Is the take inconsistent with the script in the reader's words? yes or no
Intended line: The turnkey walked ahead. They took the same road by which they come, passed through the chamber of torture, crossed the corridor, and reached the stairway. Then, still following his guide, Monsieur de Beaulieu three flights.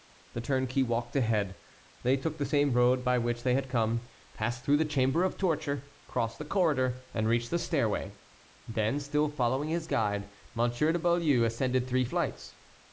yes